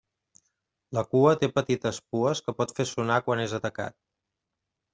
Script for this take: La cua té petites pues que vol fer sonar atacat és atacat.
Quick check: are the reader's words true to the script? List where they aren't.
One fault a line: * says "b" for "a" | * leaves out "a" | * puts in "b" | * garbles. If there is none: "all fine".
* says "pot" for "vol"
* says "quan" for "atacat"